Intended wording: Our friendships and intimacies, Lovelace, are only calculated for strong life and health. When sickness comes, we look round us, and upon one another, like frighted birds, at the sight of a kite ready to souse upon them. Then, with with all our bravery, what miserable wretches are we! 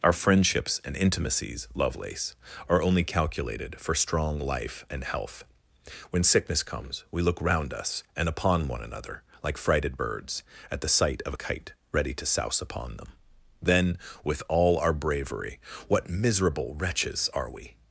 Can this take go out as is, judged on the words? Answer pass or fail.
fail